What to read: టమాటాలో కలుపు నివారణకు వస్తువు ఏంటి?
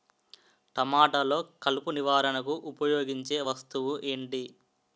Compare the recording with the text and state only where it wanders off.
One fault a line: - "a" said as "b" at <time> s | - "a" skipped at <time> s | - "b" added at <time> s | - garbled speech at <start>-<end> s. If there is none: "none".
- "ఉపయోగించే" added at 2.7 s